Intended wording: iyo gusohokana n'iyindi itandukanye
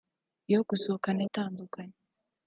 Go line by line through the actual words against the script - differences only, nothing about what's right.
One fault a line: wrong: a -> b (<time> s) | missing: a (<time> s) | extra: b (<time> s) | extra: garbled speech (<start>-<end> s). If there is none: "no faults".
missing: n'iyindi (1.2 s)